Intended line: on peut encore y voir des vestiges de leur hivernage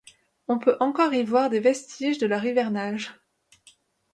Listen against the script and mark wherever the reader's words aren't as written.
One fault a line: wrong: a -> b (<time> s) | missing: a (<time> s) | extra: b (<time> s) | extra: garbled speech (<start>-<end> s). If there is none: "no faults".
no faults